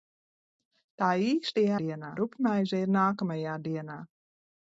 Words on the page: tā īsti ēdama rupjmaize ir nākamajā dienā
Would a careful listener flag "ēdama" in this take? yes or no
yes